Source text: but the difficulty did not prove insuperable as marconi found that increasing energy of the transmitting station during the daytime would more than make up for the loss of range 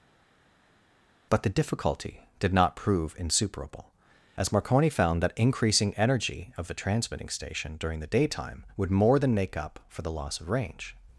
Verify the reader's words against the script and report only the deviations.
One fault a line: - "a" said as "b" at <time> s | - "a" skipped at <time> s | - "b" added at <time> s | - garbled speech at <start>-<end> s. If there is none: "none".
none